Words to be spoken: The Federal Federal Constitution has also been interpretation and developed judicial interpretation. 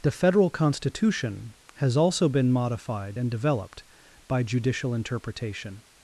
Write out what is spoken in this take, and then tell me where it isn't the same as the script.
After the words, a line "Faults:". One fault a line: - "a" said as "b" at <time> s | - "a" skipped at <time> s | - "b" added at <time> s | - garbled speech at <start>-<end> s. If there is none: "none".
The Federal Constitution has also been modified and developed by judicial interpretation.
Faults:
- "Federal" skipped at 0.5 s
- "interpretation" said as "modified" at 2.5 s
- "by" added at 4.3 s